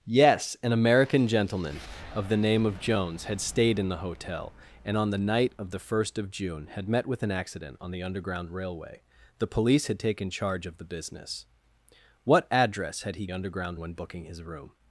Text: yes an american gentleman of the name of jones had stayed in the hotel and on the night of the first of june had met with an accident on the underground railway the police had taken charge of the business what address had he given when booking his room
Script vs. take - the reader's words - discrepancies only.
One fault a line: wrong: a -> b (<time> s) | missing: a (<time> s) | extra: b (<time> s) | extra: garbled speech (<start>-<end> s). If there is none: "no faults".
wrong: given -> underground (13.3 s)